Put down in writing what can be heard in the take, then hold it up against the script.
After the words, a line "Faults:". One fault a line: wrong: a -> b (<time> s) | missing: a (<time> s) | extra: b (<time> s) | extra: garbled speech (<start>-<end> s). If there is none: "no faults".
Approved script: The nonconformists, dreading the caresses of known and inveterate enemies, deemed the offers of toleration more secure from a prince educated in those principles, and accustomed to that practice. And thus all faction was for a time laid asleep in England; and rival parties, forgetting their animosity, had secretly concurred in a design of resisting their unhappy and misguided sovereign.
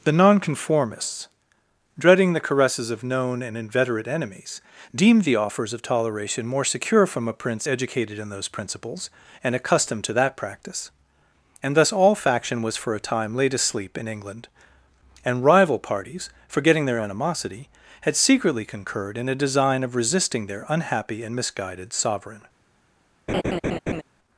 The nonconformists, dreading the caresses of known and inveterate enemies, deemed the offers of toleration more secure from a prince educated in those principles, and accustomed to that practice. And thus all faction was for a time laid asleep in England; and rival parties, forgetting their animosity, had secretly concurred in a design of resisting their unhappy and misguided sovereign.
Faults:
no faults